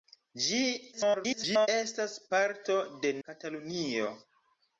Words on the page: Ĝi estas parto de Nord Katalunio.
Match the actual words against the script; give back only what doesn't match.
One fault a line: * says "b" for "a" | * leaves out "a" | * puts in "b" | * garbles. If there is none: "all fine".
* garbles
* leaves out "Nord"